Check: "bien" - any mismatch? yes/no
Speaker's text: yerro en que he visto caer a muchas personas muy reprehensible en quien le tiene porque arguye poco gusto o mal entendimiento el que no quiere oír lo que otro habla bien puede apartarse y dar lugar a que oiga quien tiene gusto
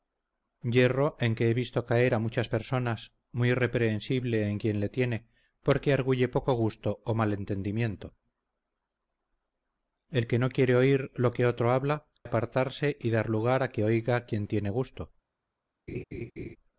yes